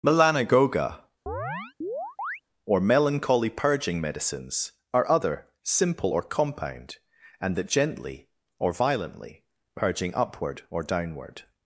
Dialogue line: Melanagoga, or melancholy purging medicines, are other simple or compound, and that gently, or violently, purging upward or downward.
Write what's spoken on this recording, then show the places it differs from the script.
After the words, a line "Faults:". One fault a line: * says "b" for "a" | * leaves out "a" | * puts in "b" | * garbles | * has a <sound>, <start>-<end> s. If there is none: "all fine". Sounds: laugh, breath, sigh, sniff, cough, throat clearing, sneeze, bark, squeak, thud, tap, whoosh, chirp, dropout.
Melanagoga, or melancholy purging medicines, are other simple or compound, and that gently, or violently, purging upward or downward.
Faults:
* has a chirp, 1.3-2.4 s